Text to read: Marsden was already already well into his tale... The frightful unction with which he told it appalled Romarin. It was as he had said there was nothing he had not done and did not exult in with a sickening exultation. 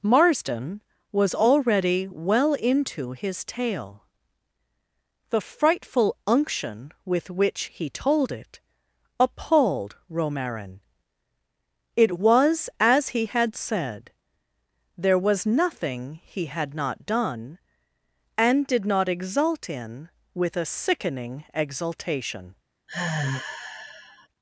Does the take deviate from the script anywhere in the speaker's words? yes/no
yes